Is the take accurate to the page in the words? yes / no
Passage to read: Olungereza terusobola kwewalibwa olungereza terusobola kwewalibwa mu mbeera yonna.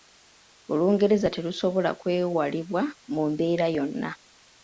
no